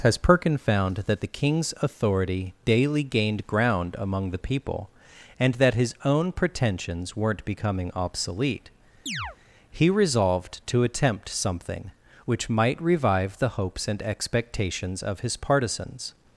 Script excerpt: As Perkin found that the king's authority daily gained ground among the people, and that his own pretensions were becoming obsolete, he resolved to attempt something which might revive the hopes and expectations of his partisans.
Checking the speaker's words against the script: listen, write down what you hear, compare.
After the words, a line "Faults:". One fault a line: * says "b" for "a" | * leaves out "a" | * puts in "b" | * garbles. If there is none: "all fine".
As Perkin found that the king's authority daily gained ground among the people, and that his own pretensions weren't becoming obsolete, he resolved to attempt something which might revive the hopes and expectations of his partisans.
Faults:
* says "weren't" for "were"